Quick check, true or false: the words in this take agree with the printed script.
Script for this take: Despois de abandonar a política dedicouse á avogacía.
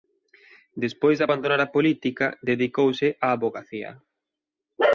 true